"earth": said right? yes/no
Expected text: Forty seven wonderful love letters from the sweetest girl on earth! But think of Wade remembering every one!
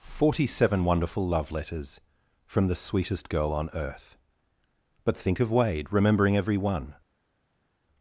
yes